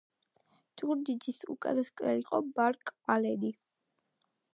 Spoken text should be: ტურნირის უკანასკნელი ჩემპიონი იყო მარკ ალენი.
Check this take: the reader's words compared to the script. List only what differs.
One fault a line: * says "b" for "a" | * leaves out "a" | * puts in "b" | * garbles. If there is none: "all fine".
* leaves out "ჩემპიონი"